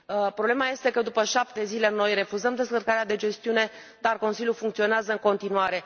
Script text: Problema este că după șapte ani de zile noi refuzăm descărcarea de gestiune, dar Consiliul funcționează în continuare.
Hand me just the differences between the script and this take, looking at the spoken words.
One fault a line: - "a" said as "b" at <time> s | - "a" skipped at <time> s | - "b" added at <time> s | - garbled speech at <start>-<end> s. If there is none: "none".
- "ani" skipped at 1.6 s